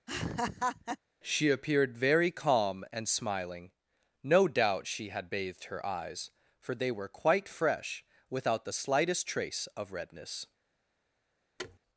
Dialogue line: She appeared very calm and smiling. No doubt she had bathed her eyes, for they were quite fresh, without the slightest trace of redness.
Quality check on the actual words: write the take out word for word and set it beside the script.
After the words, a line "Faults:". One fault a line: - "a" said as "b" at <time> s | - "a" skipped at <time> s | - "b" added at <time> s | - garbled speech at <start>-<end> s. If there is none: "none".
She appeared very calm and smiling. No doubt she had bathed her eyes, for they were quite fresh, without the slightest trace of redness.
Faults:
none